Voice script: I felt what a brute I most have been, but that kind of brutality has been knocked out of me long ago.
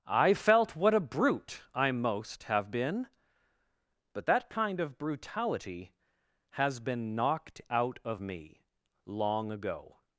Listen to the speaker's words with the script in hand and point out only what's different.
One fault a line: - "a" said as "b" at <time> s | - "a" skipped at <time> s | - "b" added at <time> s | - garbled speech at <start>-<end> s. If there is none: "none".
none